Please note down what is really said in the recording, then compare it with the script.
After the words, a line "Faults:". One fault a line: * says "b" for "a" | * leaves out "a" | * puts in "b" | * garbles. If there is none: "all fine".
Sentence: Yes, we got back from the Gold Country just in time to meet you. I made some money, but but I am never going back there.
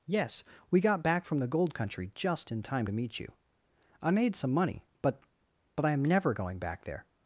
Yes, we got back from the Gold Country just in time to meet you. I made some money, but but I am never going back there.
Faults:
all fine